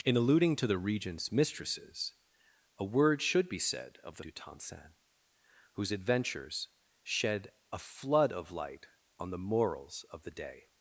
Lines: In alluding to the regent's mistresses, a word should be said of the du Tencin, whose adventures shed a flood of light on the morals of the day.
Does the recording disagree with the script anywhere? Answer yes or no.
no